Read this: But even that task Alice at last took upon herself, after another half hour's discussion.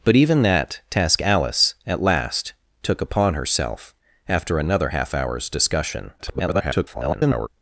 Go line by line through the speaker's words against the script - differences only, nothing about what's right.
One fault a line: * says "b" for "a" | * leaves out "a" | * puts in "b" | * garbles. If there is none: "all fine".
* garbles